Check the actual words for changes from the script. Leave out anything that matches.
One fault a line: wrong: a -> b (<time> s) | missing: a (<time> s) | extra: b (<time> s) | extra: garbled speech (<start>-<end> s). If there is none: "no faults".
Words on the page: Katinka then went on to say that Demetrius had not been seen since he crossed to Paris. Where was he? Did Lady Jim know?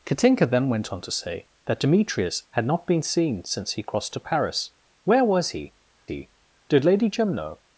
extra: he (6.0 s)